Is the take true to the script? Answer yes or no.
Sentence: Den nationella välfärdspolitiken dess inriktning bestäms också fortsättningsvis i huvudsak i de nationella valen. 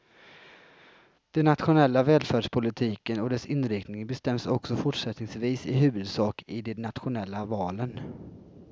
no